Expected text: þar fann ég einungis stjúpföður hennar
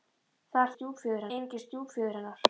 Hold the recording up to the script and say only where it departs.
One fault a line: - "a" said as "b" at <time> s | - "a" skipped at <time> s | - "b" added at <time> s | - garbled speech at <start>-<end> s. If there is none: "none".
- "fann" said as "stjúpföður" at 0.8 s